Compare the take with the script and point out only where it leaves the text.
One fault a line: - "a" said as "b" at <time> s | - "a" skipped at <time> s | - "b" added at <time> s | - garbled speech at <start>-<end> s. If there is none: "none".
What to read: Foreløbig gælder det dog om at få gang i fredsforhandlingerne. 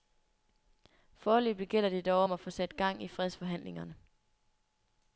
- "sat" added at 2.5 s